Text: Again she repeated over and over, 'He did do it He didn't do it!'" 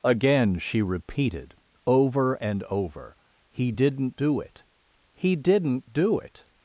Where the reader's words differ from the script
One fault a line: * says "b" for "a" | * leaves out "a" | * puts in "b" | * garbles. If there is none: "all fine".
* says "didn't" for "did"